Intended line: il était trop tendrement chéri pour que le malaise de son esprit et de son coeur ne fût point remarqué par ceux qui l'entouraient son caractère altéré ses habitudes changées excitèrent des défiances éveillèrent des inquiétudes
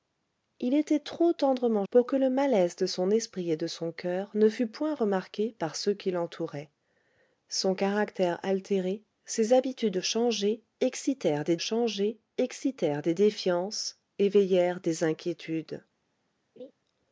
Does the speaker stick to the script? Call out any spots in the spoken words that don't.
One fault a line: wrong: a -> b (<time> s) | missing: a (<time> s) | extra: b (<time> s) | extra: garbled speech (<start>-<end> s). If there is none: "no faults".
missing: chéri (1.9 s)
extra: changées excitèrent des (11.6 s)